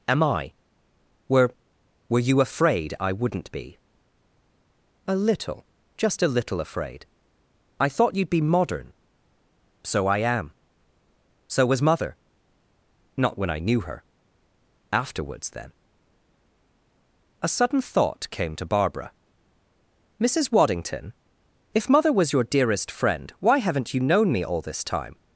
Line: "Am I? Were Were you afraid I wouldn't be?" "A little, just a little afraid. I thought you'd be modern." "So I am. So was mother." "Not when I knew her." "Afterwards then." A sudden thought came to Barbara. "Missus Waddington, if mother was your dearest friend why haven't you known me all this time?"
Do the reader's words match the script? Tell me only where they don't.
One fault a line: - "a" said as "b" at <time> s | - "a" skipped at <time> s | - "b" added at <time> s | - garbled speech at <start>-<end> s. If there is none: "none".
none